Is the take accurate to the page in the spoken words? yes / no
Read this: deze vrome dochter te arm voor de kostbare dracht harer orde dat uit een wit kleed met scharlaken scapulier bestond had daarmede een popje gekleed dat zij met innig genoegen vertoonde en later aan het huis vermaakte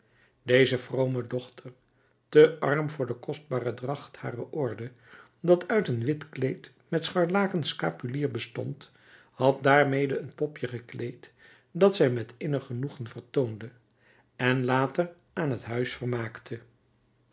yes